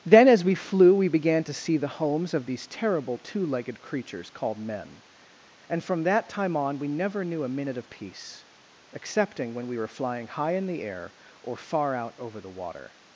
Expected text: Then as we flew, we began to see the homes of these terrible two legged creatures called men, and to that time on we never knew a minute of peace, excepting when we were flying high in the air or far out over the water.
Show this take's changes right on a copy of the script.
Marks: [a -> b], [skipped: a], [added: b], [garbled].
Then as we flew, we began to see the homes of these terrible two legged creatures called men, and [to -> from] that time on we never knew a minute of peace, excepting when we were flying high in the air or far out over the water.